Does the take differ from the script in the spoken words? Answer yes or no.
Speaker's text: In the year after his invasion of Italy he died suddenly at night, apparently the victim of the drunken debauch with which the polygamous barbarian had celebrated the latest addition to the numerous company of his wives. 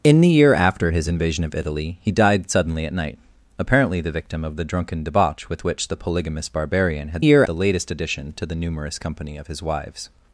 yes